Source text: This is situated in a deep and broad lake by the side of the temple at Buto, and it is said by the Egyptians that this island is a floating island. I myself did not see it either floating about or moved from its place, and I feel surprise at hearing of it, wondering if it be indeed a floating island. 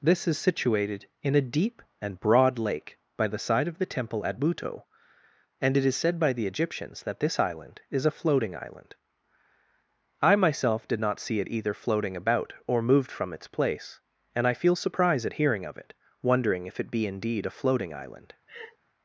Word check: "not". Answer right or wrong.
right